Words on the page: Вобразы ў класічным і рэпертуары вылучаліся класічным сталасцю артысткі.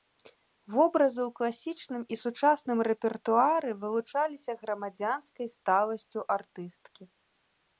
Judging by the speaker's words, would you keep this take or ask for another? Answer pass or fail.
fail